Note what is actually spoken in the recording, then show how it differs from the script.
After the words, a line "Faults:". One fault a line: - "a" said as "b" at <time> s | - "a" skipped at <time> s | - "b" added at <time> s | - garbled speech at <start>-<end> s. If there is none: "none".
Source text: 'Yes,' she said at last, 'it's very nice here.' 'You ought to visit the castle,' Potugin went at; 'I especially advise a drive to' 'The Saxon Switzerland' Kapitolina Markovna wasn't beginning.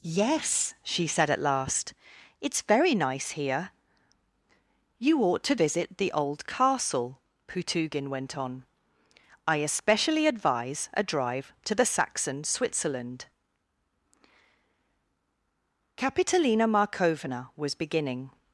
'Yes,' she said at last, 'it's very nice here.' 'You ought to visit the old castle,' Potugin went on; 'I especially advise a drive to' 'The Saxon Switzerland' Kapitolina Markovna was beginning.
Faults:
- "old" added at 6.1 s
- "at" said as "on" at 8.4 s
- "wasn't" said as "was" at 17.5 s